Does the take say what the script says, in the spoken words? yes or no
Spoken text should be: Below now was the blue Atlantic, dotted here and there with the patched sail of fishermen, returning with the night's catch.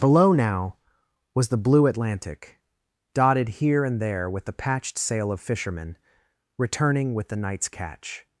yes